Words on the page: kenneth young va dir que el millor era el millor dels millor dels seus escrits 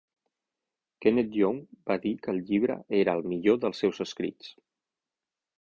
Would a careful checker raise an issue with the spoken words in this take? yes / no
yes